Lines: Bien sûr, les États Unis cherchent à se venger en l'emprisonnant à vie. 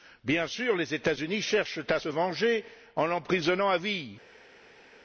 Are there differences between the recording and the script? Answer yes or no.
no